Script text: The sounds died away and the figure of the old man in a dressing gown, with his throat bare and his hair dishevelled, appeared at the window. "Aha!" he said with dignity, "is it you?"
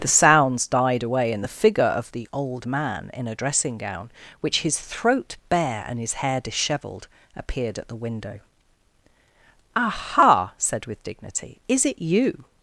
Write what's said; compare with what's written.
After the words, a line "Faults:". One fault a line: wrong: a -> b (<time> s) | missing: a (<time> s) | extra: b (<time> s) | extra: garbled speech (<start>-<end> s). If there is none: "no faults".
The sounds died away and the figure of the old man in a dressing gown, which his throat bare and his hair dishevelled, appeared at the window. "Aha!" said with dignity, "is it you?"
Faults:
wrong: with -> which (4.4 s)
missing: he (10.5 s)